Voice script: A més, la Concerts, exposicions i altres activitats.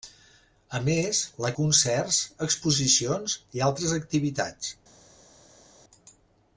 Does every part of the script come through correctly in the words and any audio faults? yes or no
yes